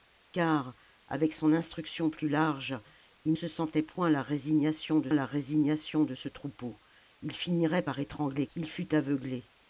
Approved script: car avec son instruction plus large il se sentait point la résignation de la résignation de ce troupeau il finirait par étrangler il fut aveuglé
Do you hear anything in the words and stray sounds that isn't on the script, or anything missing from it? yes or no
no